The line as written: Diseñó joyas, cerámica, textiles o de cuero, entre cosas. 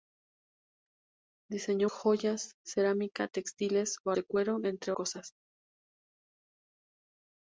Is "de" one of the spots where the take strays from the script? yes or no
no